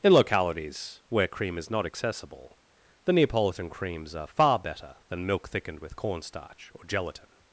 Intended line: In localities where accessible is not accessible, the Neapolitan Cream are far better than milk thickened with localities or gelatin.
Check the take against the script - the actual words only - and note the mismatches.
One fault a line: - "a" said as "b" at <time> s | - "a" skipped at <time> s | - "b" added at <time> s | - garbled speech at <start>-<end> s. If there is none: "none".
- "accessible" said as "cream" at 1.3 s
- "Cream" said as "Creams" at 3.7 s
- "localities" said as "cornstarch" at 6.0 s